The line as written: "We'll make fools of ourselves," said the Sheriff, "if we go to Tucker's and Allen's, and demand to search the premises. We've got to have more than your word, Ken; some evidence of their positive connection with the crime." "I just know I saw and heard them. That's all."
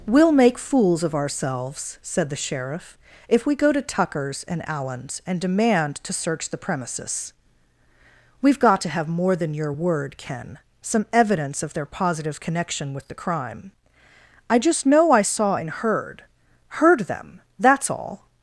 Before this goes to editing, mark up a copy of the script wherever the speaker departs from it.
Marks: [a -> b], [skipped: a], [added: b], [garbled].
"We'll make fools of ourselves," said the Sheriff, "if we go to Tucker's and Allen's, and demand to search the premises. We've got to have more than your word, Ken; some evidence of their positive connection with the crime." "I just know I saw and heard [added: heard] them. That's all."